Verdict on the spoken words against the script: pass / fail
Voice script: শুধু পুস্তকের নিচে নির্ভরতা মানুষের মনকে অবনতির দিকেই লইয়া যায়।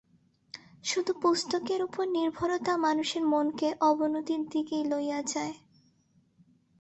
fail